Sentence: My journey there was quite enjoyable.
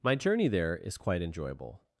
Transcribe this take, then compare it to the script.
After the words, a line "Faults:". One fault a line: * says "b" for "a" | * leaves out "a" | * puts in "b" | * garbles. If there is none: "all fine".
My journey there is quite enjoyable.
Faults:
* says "is" for "was"